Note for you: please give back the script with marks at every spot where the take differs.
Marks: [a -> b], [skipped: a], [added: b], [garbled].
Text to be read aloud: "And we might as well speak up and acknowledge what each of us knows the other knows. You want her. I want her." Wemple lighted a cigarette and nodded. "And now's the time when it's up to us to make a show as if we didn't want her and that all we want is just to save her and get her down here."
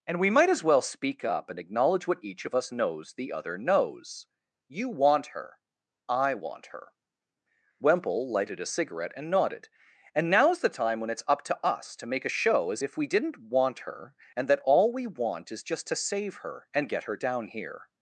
"And we might as well speak up and acknowledge what each of us knows the other knows. You want her. I want her." Wemple lighted a cigarette and nodded. "And now's the time when it's up to us to make a show as if we didn't want her and that all we want is just to save her and get her down here."